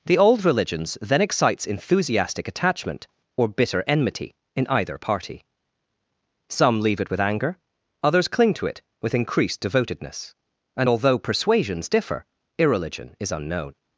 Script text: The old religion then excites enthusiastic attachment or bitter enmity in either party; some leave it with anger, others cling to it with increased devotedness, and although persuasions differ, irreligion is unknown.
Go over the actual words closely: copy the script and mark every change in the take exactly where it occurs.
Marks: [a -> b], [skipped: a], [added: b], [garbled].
The old [religion -> religions] then excites enthusiastic attachment or bitter enmity in either party; some leave it with anger, others cling to it with increased devotedness, and although persuasions differ, irreligion is unknown.